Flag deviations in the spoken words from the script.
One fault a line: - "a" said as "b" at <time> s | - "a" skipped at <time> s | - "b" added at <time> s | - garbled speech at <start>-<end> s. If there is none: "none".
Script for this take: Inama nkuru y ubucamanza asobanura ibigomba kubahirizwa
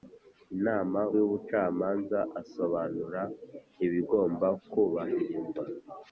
- "nkuru" skipped at 1.0 s